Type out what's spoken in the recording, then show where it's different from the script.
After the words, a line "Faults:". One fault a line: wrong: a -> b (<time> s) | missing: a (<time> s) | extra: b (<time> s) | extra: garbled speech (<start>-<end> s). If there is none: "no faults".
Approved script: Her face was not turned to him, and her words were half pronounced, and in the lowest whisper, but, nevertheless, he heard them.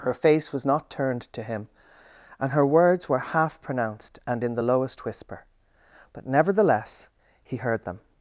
Her face was not turned to him, and her words were half pronounced, and in the lowest whisper, but, nevertheless, he heard them.
Faults:
no faults